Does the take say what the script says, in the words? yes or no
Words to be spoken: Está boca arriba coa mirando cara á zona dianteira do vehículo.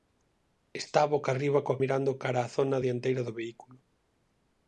yes